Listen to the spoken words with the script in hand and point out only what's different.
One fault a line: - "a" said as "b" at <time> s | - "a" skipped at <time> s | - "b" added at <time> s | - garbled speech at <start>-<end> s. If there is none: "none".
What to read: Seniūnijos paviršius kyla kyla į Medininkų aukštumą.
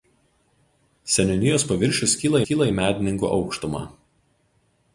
none